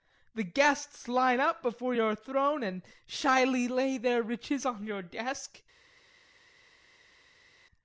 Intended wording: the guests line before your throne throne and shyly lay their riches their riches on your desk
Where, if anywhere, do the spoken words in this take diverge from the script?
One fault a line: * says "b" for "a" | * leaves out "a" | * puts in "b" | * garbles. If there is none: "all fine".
* puts in "up"
* leaves out "throne"
* leaves out "their riches"